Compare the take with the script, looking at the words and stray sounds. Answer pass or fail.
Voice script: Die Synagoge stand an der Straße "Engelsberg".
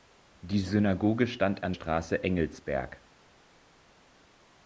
fail